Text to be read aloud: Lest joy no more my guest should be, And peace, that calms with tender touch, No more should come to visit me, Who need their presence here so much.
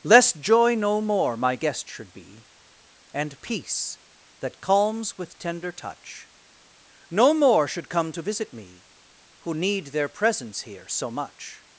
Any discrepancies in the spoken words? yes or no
no